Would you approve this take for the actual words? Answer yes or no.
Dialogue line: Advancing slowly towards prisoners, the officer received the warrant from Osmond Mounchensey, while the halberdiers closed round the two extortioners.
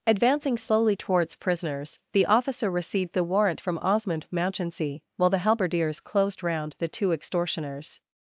yes